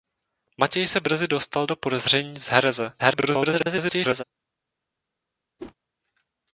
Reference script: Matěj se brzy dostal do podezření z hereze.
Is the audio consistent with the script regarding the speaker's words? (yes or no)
no